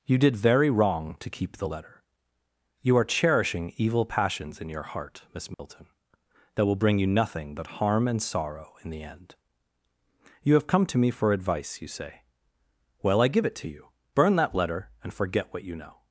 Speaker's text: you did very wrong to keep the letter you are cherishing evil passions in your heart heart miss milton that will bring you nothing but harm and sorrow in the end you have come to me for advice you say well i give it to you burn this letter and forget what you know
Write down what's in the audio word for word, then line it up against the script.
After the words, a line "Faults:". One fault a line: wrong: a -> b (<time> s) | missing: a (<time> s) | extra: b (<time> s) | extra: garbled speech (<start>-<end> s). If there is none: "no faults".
you did very wrong to keep the letter you are cherishing evil passions in your heart miss milton that will bring you nothing but harm and sorrow in the end you have come to me for advice you say well i give it to you burn that letter and forget what you know
Faults:
missing: heart (5.2 s)
wrong: this -> that (14.3 s)